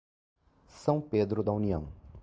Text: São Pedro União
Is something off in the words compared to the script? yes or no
yes